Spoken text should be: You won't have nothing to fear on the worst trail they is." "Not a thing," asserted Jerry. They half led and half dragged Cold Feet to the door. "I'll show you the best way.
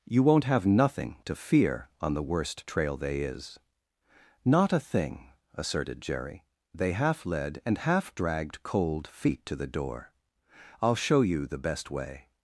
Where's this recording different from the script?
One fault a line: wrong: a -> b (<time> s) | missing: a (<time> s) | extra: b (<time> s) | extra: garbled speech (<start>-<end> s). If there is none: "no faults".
no faults